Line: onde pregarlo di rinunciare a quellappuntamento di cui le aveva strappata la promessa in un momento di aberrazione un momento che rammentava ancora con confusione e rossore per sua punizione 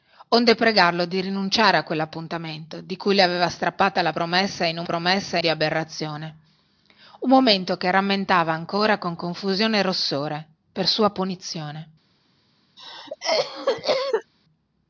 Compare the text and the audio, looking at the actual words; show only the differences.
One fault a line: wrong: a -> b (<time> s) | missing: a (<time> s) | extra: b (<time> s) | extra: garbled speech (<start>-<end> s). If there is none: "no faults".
wrong: momento -> promessa (4.8 s)